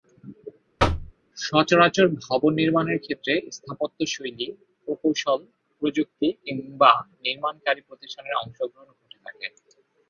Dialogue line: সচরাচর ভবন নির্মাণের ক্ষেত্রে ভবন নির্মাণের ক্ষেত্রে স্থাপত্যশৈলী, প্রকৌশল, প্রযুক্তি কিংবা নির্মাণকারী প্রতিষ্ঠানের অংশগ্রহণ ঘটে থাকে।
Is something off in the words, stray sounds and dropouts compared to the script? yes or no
yes